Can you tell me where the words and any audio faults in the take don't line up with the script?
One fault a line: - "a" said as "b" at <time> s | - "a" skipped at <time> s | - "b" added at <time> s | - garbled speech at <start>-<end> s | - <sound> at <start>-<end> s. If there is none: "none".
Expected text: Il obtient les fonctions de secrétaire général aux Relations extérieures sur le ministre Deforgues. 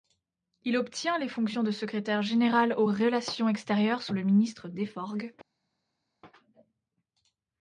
- "sur" said as "sous" at 4.0 s